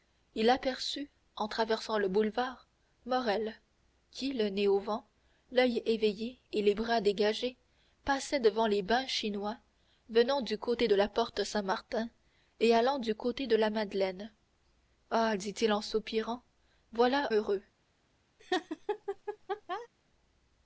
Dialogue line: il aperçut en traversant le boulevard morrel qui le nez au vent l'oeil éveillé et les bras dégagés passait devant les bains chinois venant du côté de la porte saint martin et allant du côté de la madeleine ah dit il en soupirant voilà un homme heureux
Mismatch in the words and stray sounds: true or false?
true